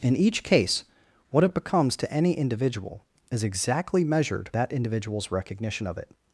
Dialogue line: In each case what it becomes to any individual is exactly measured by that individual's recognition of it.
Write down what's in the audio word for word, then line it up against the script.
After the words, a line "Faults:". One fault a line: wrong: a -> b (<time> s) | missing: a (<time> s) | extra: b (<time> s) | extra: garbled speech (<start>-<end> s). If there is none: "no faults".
In each case what it becomes to any individual is exactly measured that individual's recognition of it.
Faults:
missing: by (4.5 s)